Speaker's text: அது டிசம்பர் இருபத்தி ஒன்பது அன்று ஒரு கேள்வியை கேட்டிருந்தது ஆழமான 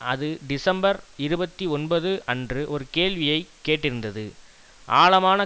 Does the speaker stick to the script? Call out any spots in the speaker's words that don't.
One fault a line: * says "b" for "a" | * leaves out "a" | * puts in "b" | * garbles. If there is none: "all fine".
all fine